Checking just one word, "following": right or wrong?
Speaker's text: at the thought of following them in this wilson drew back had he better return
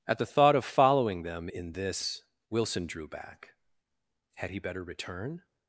right